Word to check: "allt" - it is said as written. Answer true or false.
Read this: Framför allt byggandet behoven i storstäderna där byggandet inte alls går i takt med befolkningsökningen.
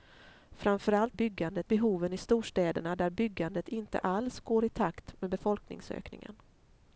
true